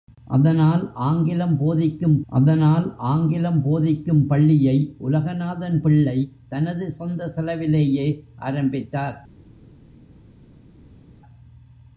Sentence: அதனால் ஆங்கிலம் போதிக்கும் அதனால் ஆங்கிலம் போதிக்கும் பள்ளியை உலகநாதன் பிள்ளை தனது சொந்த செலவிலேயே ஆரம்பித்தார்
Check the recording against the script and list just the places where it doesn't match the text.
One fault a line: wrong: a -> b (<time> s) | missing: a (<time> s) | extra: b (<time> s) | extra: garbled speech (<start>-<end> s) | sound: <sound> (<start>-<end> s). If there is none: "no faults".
no faults